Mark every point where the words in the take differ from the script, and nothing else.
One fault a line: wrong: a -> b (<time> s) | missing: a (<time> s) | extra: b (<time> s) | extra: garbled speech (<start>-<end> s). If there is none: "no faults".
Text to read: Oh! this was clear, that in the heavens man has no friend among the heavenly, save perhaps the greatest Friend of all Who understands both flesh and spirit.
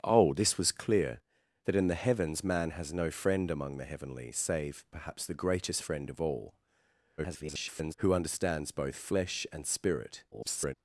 extra: garbled speech (7.2-7.9 s)
extra: garbled speech (10.3-10.7 s)